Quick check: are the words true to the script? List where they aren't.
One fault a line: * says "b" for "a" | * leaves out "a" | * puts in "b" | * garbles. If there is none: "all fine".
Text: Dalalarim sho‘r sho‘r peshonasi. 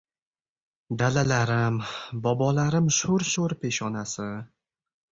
* puts in "bobolarim"